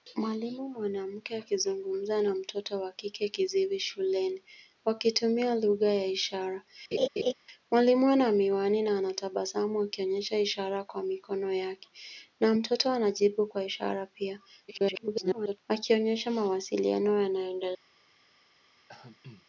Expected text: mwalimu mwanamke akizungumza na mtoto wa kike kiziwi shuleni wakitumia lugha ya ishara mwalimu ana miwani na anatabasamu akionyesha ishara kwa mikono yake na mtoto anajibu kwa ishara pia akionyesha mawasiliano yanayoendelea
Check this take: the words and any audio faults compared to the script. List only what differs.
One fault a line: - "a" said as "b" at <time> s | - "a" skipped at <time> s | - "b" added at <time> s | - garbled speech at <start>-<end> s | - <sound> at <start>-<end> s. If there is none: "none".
- laugh at 6.9-7.3 s
- garbled speech at 14.7-15.6 s
- throat clearing at 18.9-19.5 s